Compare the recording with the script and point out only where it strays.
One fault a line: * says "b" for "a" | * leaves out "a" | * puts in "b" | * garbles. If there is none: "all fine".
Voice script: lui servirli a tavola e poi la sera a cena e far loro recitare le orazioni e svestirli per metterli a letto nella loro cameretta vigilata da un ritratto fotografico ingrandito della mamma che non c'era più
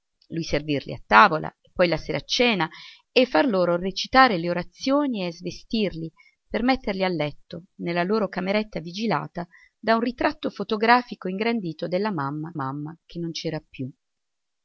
* puts in "mamma"